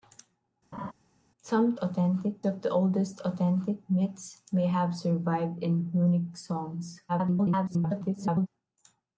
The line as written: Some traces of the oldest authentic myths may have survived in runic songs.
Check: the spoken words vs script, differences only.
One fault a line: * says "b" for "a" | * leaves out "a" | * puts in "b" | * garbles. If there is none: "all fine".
* says "authentic" for "traces"
* garbles